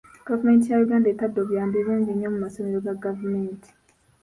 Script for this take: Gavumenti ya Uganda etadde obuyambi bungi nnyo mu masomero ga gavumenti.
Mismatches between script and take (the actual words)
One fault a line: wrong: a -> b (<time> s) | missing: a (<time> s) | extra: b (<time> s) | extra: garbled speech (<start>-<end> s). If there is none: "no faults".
no faults